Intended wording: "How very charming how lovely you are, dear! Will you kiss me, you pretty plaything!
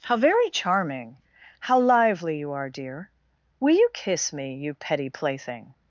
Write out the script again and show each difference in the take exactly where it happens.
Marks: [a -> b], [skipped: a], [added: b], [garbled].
"How very charming how [lovely -> lively] you are, dear! Will you kiss me, you [pretty -> petty] plaything!